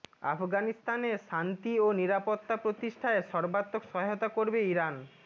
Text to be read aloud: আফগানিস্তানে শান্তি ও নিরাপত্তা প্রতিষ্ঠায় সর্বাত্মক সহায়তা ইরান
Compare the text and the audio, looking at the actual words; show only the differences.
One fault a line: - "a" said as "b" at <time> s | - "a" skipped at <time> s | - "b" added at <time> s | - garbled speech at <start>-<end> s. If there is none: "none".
- "করবে" added at 4.3 s